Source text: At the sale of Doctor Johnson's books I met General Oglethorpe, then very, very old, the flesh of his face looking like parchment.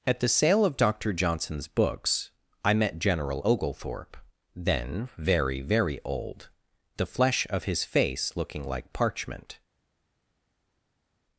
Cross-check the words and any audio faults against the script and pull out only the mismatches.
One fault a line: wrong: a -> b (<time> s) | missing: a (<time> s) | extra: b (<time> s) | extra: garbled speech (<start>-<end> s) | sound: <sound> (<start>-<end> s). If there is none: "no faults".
no faults